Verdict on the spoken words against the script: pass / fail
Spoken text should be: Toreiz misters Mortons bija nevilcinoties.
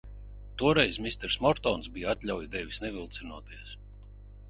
fail